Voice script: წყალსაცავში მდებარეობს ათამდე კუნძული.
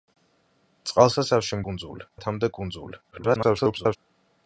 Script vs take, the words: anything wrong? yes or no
yes